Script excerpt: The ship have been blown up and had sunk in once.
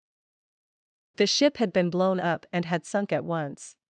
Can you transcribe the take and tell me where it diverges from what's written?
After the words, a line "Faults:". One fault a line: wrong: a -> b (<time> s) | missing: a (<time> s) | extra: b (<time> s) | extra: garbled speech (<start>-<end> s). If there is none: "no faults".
The ship had been blown up and had sunk at once.
Faults:
wrong: have -> had (1.6 s)
wrong: in -> at (3.1 s)